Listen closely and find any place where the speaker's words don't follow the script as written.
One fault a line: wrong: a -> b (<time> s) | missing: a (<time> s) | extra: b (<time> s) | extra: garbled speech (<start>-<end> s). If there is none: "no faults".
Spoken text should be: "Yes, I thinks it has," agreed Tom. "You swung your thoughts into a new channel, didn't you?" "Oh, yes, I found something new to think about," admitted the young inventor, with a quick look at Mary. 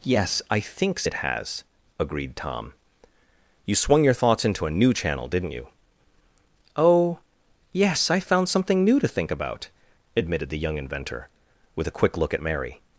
no faults